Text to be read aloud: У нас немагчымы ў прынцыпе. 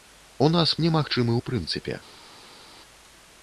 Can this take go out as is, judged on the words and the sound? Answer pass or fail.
pass